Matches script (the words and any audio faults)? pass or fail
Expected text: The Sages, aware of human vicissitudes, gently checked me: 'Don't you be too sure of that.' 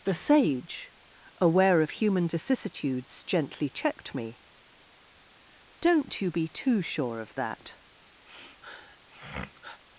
fail